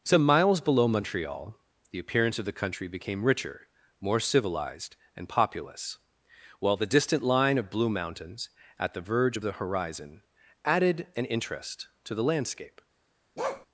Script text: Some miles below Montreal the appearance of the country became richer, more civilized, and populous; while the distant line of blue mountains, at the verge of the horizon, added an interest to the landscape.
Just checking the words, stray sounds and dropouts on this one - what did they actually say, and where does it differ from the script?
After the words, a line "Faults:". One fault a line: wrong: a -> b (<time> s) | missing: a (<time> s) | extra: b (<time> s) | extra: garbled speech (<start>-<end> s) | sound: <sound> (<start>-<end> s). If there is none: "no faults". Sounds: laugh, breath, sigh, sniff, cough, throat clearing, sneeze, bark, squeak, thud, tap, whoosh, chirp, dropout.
Some miles below Montreal the appearance of the country became richer, more civilized, and populous; while the distant line of blue mountains, at the verge of the horizon, added an interest to the landscape.
Faults:
sound: bark (13.4-13.7 s)